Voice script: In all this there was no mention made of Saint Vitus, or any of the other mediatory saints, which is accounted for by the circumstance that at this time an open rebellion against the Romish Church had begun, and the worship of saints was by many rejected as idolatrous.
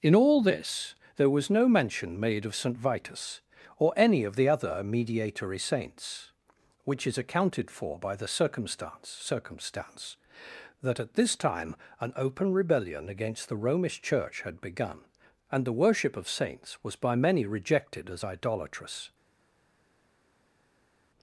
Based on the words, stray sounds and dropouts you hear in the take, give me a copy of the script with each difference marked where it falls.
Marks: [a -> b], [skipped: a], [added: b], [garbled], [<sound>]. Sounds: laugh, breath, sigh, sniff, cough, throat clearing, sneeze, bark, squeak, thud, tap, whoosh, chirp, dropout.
In all this there was no mention made of Saint Vitus, or any of the other mediatory saints, which is accounted for by the circumstance [added: circumstance] that at this time an open rebellion against the Romish Church had begun, and the worship of saints was by many rejected as idolatrous.